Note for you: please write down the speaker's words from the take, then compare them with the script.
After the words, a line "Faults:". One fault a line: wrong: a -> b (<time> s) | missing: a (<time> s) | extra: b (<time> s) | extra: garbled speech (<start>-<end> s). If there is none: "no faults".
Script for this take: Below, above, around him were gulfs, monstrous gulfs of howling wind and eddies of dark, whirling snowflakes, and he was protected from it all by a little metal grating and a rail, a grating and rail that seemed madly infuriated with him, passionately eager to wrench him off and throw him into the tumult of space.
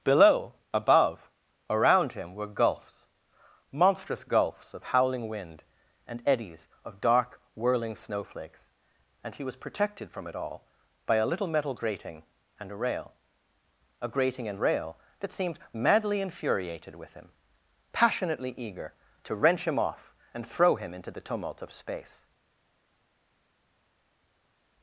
Below, above, around him were gulfs, monstrous gulfs of howling wind and eddies of dark, whirling snowflakes, and he was protected from it all by a little metal grating and a rail, a grating and rail that seemed madly infuriated with him, passionately eager to wrench him off and throw him into the tumult of space.
Faults:
no faults